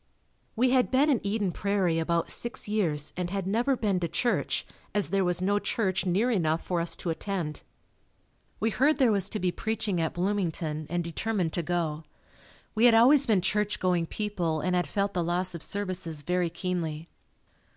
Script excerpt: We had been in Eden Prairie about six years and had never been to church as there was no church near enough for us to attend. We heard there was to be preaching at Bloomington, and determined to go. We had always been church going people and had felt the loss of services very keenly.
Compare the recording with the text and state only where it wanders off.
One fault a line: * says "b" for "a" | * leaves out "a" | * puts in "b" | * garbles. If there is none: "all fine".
all fine